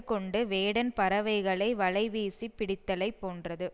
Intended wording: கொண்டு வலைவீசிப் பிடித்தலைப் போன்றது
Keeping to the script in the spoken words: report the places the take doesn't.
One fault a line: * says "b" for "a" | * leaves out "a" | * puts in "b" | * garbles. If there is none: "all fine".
* puts in "வேடன் பறவைகளை"